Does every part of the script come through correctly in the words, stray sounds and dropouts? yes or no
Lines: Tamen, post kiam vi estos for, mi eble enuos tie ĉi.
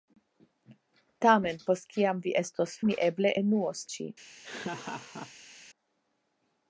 no